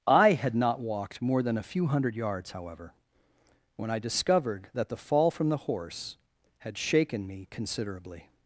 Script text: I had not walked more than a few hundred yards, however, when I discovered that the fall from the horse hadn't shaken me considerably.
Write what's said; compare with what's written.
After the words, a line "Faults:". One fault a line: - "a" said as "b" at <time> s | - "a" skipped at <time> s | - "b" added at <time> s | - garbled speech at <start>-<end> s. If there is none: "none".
I had not walked more than a few hundred yards, however, when I discovered that the fall from the horse had shaken me considerably.
Faults:
- "hadn't" said as "had" at 6.6 s